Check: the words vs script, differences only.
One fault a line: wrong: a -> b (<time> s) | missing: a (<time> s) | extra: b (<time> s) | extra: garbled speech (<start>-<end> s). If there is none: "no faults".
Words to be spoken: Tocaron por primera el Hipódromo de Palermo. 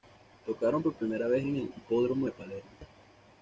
extra: vez en (1.3 s)